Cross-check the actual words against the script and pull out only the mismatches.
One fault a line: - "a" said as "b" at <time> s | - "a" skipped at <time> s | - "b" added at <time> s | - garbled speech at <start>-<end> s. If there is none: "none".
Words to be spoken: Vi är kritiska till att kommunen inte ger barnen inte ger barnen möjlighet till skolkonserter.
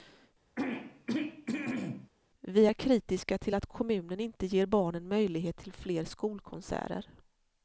- "inte ger barnen" skipped at 5.1 s
- "fler" added at 5.7 s